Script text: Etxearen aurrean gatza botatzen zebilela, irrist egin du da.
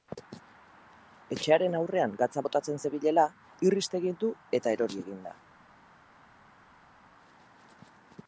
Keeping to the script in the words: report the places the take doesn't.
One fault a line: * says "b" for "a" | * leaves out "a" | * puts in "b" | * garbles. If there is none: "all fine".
* puts in "eta erori egin"